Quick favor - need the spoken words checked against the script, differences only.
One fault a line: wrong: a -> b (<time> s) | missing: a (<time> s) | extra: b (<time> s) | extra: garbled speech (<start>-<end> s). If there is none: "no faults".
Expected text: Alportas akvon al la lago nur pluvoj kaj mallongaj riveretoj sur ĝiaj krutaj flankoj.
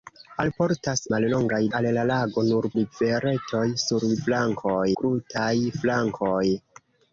wrong: akvon -> mallongaj (1.1 s)
missing: pluvoj kaj mallongaj (2.7 s)
wrong: ĝiaj -> flankoj (4.3 s)